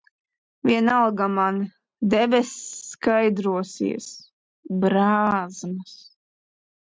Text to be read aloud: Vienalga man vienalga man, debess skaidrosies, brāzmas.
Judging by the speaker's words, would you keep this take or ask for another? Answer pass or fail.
fail